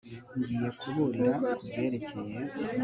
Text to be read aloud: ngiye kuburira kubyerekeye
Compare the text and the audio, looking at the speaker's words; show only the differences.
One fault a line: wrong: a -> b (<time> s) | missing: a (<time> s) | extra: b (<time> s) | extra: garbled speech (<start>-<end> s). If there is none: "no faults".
no faults